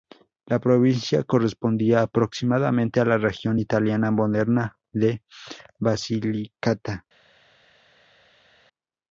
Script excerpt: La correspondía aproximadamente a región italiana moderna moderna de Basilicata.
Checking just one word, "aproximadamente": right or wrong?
right